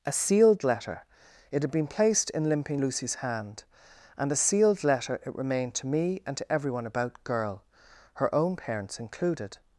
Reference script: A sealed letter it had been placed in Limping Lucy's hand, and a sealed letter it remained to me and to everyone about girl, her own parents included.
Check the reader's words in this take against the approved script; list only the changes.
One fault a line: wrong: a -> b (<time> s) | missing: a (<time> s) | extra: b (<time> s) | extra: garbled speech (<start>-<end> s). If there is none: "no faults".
no faults